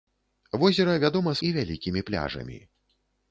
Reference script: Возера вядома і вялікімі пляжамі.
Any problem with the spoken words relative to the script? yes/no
no